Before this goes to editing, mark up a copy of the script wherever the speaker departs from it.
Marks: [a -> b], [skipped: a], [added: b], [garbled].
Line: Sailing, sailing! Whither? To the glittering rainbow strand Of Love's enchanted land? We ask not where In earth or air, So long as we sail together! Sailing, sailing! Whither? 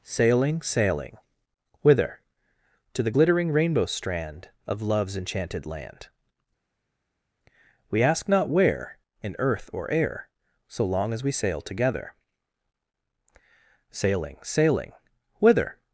Sailing, sailing! Whither? To the glittering rainbow strand Of Love's enchanted land? We ask not where In earth or air, So long as we sail together! Sailing, sailing! Whither?